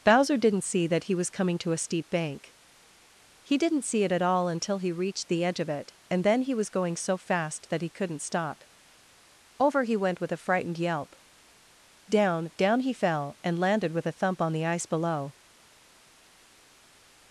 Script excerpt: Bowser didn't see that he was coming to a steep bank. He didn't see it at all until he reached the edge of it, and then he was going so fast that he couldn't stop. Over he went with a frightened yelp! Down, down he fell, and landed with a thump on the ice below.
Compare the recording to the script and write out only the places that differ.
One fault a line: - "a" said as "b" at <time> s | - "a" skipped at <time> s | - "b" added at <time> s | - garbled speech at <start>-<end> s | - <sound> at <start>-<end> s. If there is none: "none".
none